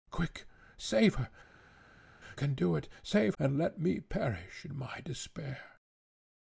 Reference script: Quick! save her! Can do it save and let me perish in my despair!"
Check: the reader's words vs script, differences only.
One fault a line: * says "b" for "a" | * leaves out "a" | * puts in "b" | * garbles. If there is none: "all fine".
all fine